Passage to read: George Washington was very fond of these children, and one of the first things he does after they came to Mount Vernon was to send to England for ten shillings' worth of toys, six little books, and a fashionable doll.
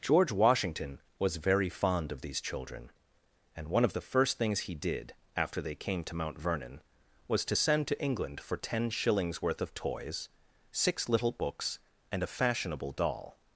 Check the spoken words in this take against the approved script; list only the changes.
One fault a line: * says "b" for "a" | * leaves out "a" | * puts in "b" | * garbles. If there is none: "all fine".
* says "did" for "does"